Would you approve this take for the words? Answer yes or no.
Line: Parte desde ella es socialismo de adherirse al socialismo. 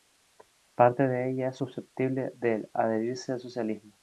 no